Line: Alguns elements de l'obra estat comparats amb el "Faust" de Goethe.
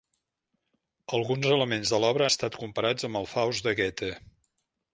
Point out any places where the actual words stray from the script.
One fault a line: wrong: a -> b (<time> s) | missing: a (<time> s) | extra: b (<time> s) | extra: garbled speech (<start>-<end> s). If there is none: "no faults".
no faults